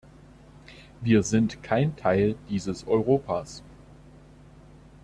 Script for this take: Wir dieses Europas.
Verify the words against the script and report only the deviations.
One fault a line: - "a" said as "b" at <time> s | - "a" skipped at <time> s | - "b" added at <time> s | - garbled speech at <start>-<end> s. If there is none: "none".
- "sind kein Teil" added at 1.2 s